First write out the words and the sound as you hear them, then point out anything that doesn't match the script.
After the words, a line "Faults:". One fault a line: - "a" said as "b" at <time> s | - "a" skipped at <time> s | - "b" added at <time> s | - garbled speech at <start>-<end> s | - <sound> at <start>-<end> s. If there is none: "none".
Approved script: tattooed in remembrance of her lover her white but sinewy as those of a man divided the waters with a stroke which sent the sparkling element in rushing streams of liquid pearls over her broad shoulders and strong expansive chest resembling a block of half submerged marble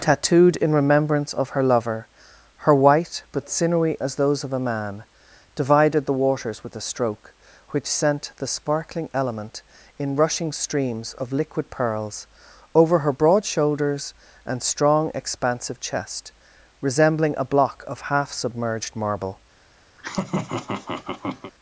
tattooed in remembrance of her lover her white but sinewy as those of a man divided the waters with a stroke which sent the sparkling element in rushing streams of liquid pearls over her broad shoulders and strong expansive chest resembling a block of half submerged marble
Faults:
- laugh at 20.0-21.5 s